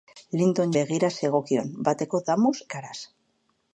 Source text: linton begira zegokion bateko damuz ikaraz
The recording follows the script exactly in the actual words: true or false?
true